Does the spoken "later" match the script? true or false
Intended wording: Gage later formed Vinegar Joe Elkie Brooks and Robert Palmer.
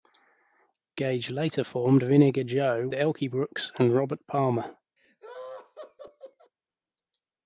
true